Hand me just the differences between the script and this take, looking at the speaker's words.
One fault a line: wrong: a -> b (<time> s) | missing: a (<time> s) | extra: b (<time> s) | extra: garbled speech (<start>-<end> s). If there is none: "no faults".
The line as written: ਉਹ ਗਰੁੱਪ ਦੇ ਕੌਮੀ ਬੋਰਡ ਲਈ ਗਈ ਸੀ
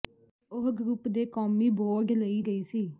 no faults